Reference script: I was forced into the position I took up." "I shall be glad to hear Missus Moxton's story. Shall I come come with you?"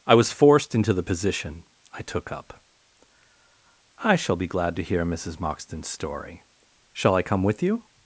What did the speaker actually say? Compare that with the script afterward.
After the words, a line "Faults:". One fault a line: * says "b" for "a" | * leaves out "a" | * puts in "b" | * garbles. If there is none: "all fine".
I was forced into the position I took up." "I shall be glad to hear Missus Moxton's story. Shall I come with you?"
Faults:
* leaves out "come"